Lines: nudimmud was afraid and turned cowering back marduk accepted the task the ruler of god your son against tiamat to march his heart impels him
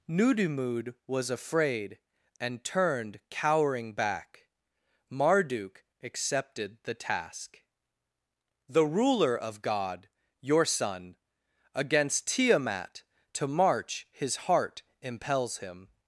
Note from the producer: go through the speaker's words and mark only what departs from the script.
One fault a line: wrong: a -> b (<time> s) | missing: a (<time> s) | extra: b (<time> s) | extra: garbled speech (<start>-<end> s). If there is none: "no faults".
no faults